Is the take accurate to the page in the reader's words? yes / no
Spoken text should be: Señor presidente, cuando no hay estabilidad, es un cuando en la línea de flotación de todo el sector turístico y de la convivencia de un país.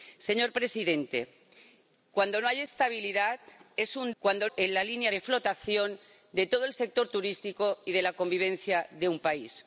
yes